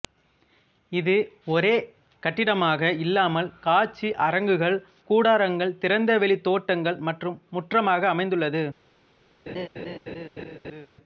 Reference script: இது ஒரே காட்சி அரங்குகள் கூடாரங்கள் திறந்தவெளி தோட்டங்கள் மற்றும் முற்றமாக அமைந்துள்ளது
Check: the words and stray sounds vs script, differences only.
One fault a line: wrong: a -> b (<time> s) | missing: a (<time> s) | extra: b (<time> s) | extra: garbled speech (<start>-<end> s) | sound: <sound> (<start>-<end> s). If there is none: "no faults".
extra: கட்டிடமாக இல்லாமல் (2.2 s)
sound: laugh (9.5-10.9 s)